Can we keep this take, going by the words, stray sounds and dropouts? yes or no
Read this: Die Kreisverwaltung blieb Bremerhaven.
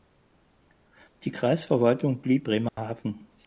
no